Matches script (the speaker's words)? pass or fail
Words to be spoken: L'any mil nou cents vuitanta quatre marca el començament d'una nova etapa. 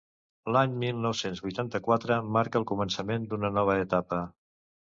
pass